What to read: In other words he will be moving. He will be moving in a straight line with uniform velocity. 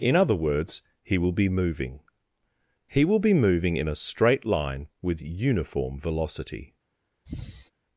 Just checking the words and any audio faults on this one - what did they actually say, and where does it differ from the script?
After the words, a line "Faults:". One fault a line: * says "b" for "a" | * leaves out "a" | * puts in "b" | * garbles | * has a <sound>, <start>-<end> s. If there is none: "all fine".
In other words he will be moving. He will be moving in a straight line with uniform velocity.
Faults:
* has a sigh, 7.3-7.7 s